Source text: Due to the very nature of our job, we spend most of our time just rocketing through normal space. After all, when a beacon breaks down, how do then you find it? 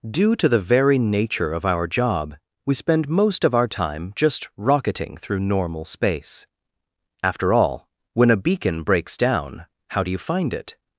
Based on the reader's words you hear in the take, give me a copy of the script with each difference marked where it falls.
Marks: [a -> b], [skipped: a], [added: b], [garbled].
Due to the very nature of our job, we spend most of our time just rocketing through normal space. After all, when a beacon breaks down, how do [skipped: then] you find it?